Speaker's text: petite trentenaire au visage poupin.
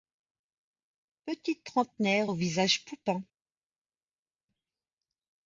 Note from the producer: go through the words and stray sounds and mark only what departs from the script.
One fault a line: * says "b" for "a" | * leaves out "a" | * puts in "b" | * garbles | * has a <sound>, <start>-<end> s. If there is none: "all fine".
all fine